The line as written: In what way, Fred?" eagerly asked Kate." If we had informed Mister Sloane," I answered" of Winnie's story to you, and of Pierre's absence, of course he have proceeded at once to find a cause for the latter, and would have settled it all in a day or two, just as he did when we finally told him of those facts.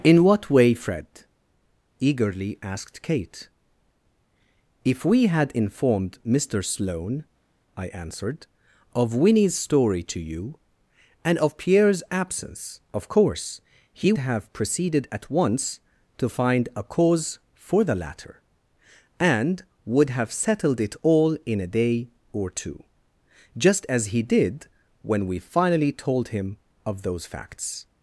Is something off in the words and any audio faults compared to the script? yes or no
no